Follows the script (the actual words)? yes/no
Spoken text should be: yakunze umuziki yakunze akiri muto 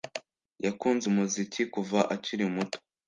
no